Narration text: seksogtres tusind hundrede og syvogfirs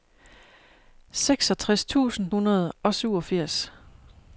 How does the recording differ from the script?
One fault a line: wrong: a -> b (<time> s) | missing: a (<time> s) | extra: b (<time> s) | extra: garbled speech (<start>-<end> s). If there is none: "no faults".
no faults